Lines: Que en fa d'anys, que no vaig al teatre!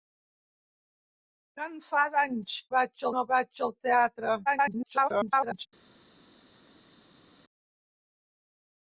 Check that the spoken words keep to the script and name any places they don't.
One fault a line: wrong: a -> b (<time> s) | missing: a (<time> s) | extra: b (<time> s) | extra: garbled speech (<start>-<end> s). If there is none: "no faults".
wrong: que -> vaig (2.8 s)
extra: garbled speech (4.5-5.7 s)